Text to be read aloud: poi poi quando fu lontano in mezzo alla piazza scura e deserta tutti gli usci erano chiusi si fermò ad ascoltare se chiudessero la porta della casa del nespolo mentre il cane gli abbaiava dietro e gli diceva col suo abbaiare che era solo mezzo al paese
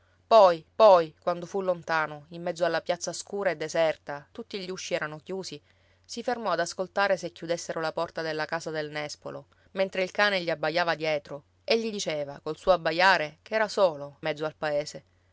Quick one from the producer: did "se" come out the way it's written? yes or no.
yes